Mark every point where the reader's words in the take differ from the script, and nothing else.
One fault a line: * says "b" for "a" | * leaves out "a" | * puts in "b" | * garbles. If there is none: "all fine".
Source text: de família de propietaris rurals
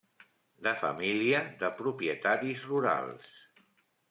all fine